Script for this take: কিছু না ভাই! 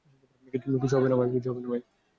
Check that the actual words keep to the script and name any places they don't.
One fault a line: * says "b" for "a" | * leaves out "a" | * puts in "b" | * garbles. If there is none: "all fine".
* puts in "হবে"